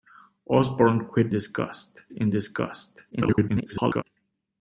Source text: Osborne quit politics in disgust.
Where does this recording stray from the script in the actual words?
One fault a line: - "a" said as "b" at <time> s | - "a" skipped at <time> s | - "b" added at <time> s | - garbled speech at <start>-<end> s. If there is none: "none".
- "politics" said as "disgust" at 1.3 s
- garbled speech at 3.1-4.0 s